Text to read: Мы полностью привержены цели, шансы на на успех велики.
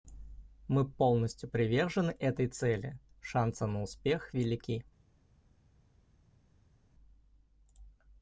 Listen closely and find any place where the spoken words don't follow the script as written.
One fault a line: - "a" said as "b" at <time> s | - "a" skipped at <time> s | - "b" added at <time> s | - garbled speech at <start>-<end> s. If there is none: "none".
- "этой" added at 2.1 s
- "на" skipped at 3.8 s